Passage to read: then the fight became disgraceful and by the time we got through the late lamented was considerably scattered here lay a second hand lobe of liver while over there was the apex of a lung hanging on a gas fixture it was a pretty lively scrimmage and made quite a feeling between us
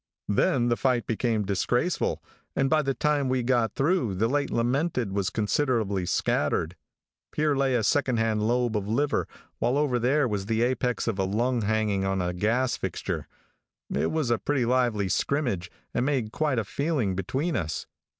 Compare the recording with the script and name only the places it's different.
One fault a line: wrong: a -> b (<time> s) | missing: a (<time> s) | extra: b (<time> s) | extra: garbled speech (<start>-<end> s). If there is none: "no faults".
no faults